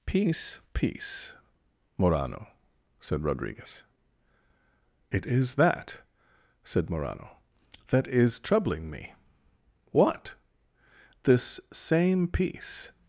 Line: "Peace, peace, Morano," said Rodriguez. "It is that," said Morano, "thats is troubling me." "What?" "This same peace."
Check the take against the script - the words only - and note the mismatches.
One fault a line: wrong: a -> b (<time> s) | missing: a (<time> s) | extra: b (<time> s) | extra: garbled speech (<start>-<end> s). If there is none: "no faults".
wrong: thats -> that (7.9 s)